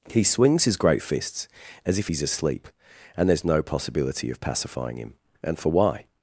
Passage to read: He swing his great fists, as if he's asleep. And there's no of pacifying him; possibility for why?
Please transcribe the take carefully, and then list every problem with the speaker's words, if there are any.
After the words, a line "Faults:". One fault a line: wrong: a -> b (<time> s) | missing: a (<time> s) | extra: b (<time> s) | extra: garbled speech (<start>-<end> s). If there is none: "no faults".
He swings his great fists, as if he's asleep. And there's no possibility of pacifying him; and for why?
Faults:
wrong: swing -> swings (0.2 s)
extra: possibility (3.6 s)
wrong: possibility -> and (5.4 s)